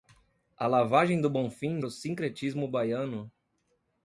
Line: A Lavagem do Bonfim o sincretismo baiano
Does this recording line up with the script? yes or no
yes